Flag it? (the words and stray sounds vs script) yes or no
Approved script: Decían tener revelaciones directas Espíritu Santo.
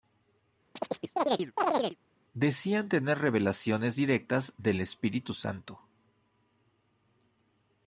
yes